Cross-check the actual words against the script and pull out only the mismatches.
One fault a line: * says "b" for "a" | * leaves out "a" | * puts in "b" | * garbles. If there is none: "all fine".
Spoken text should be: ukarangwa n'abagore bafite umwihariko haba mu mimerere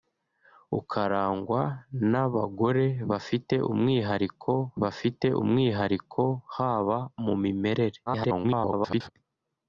* puts in "bafite umwihariko"
* garbles